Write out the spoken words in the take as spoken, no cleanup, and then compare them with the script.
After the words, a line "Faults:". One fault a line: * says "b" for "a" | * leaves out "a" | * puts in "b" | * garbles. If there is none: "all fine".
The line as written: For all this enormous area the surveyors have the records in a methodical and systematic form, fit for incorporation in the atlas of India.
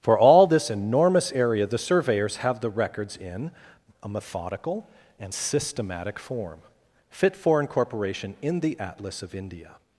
For all this enormous area the surveyors have the records in a methodical and systematic form, fit for incorporation in the atlas of India.
Faults:
all fine